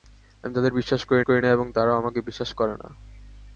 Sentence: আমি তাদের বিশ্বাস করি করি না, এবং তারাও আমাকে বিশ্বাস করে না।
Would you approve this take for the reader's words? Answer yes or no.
yes